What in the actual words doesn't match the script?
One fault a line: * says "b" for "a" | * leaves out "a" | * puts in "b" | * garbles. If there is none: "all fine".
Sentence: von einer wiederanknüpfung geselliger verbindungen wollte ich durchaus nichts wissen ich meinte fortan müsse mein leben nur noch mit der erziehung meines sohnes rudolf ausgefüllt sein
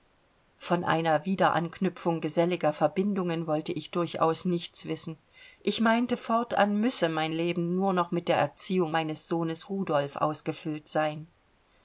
all fine